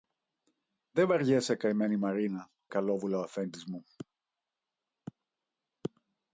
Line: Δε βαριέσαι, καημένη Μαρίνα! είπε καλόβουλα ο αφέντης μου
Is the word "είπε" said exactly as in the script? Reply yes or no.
no